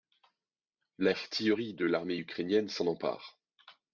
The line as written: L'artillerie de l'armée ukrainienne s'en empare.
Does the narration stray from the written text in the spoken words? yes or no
no